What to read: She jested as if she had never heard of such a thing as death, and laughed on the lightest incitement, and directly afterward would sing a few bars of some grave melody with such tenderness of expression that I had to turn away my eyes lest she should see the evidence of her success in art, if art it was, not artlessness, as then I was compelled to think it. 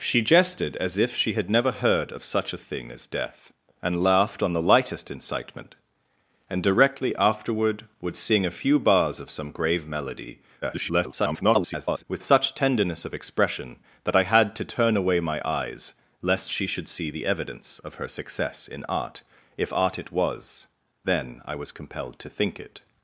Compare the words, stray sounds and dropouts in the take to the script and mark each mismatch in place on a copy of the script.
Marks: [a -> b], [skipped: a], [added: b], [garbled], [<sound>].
She jested as if she had never heard of such a thing as death, and laughed on the lightest incitement, and directly afterward would sing a few bars of some grave melody [garbled] with such tenderness of expression that I had to turn away my eyes lest she should see the evidence of her success in art, if art it was, [skipped: not artlessness, as] then I was compelled to think it.